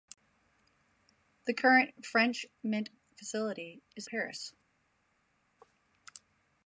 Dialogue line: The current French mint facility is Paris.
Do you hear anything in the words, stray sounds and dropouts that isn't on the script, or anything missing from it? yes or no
no